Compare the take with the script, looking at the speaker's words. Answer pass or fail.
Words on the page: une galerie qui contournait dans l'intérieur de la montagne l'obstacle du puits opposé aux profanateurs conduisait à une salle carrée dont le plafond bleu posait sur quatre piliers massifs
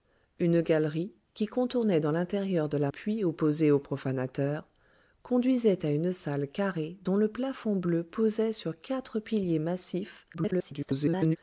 fail